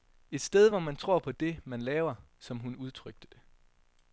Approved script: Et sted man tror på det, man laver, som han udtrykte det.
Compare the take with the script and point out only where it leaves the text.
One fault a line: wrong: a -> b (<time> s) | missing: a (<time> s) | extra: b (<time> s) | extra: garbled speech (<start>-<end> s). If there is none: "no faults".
extra: hvor (0.7 s)
wrong: han -> hun (2.6 s)